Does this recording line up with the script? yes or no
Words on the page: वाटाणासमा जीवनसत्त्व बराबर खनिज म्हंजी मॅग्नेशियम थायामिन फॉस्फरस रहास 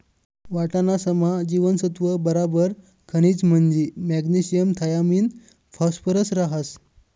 yes